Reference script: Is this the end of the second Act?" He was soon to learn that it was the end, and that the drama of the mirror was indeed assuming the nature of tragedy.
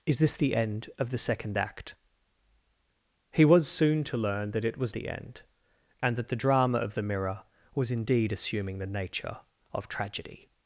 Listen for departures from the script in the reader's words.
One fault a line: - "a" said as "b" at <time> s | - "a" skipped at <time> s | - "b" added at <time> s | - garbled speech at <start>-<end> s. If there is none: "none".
none